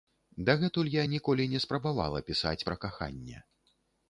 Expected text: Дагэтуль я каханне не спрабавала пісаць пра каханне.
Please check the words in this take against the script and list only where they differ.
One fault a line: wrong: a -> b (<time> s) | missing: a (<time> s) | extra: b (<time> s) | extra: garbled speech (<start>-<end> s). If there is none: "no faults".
wrong: каханне -> ніколі (1.1 s)